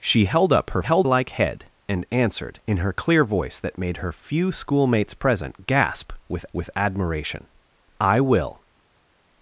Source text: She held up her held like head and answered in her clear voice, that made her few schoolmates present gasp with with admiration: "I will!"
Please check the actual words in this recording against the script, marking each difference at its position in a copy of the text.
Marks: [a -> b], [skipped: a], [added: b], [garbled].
She held up her held like head and answered in her clear voice, that made her few schoolmates present gasp with with admiration: "I will!"